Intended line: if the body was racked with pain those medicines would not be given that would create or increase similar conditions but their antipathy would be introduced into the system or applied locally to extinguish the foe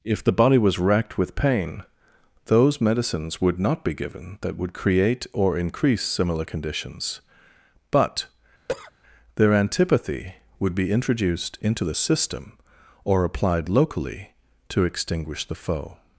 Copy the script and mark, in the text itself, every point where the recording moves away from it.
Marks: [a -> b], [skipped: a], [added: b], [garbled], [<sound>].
if the body was racked with pain those medicines would not be given that would create or increase similar conditions but [cough] their antipathy would be introduced into the system or applied locally to extinguish the foe